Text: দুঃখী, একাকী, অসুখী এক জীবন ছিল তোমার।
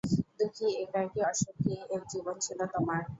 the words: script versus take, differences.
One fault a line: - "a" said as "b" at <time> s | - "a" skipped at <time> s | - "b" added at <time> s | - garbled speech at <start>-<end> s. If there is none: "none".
none